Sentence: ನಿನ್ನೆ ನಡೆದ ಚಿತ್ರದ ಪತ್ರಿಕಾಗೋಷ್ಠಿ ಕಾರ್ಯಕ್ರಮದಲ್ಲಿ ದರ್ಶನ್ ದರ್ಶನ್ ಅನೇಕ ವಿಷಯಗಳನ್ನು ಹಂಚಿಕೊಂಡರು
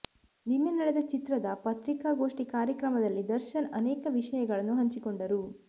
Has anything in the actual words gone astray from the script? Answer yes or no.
yes